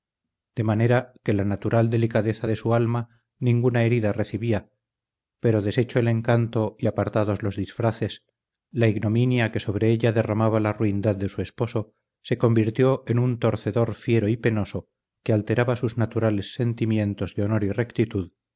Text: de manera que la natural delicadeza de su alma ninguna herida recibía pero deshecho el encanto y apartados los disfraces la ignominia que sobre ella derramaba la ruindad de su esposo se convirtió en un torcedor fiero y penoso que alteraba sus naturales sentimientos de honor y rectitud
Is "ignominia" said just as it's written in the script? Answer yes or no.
yes